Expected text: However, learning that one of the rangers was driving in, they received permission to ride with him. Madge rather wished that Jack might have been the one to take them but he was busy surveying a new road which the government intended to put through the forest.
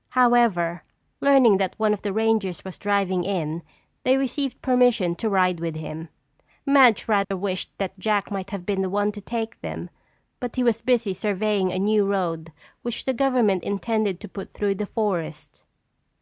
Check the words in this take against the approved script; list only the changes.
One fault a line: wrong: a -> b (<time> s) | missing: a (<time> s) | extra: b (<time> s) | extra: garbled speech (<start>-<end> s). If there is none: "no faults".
no faults